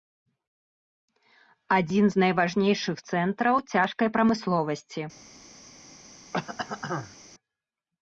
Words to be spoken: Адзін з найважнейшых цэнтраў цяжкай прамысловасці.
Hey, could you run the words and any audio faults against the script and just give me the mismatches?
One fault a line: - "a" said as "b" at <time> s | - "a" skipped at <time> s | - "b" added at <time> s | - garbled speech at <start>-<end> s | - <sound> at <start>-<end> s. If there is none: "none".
- throat clearing at 6.3-7.2 s